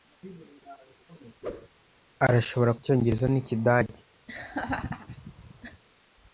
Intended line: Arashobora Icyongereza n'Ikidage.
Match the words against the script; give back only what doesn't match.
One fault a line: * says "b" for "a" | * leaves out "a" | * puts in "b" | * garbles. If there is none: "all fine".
all fine